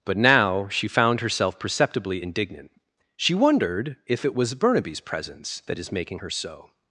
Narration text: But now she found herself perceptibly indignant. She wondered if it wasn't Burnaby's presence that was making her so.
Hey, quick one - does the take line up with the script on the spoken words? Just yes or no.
no